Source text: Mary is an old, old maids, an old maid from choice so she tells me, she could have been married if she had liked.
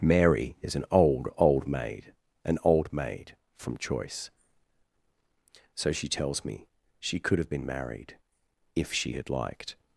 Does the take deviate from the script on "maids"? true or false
true